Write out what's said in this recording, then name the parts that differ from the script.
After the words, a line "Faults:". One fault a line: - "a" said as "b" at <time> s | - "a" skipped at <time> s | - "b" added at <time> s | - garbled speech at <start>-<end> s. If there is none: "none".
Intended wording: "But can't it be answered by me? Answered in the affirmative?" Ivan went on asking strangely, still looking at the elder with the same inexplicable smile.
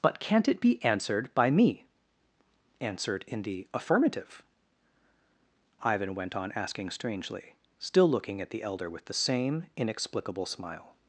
"But can't it be answered by me? Answered in the affirmative?" Ivan went on asking strangely, still looking at the elder with the same inexplicable smile.
Faults:
none